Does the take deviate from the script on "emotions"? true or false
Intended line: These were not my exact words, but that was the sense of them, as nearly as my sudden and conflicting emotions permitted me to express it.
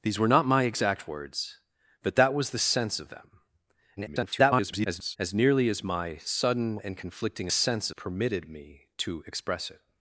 true